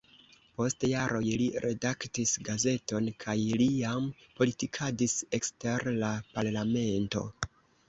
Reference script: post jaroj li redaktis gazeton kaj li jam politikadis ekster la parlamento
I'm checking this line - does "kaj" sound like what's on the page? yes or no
yes